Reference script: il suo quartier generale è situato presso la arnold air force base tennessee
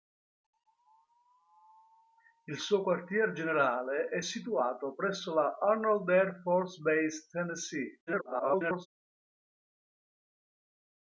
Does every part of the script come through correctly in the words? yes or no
no